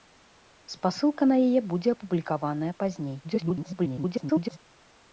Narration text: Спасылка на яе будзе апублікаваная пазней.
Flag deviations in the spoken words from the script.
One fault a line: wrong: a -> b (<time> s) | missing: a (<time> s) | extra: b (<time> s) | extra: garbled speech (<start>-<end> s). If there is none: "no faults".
extra: garbled speech (3.2-4.6 s)